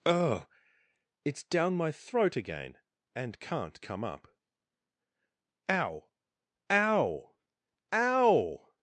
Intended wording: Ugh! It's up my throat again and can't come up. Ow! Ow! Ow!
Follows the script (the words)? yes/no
no